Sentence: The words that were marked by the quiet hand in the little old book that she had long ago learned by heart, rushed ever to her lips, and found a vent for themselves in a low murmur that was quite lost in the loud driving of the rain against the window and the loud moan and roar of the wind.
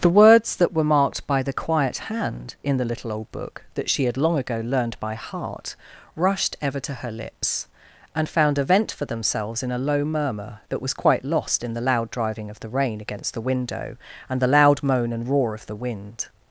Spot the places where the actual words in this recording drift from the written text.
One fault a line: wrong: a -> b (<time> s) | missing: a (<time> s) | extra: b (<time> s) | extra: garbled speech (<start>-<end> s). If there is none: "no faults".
no faults